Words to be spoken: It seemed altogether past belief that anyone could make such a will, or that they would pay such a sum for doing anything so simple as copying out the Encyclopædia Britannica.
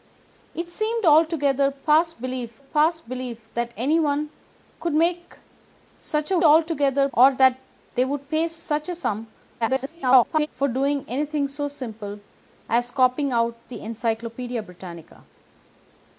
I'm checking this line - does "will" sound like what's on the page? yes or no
no